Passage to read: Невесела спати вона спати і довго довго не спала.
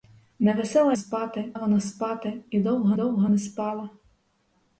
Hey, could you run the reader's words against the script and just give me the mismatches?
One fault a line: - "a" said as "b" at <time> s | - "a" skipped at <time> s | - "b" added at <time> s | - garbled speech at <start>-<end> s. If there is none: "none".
none